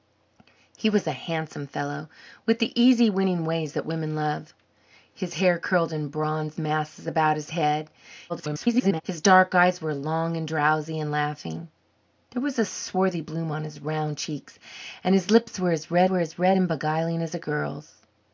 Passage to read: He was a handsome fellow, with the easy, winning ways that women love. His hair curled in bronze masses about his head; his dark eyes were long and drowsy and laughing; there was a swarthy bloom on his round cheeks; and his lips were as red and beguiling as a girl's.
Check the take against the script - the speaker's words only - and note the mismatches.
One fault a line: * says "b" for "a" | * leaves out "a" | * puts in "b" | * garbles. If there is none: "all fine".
* garbles
* puts in "were as red"